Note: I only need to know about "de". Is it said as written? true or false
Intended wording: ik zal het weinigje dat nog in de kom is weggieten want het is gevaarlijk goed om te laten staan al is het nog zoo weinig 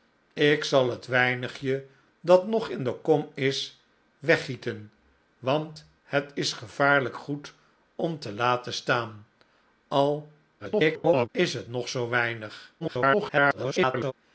true